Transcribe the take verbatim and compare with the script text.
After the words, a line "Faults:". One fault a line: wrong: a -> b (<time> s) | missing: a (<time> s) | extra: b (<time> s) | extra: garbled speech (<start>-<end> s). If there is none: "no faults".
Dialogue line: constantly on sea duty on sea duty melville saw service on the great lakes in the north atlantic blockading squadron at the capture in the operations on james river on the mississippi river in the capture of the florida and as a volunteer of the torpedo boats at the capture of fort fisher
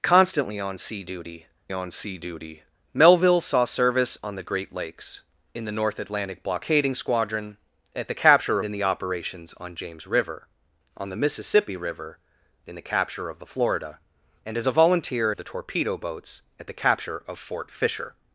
constantly on sea duty on sea duty melville saw service on the great lakes in the north atlantic blockading squadron at the capture in the operations on james river on the mississippi river in the capture of the florida and as a volunteer of the torpedo boats at the capture of fort fisher
Faults:
no faults